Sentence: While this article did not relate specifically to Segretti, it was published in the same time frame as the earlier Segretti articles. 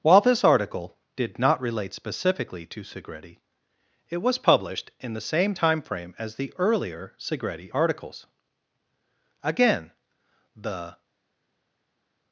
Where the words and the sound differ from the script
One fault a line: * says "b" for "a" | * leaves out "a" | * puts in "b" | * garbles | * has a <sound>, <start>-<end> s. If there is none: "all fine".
* puts in "Again the"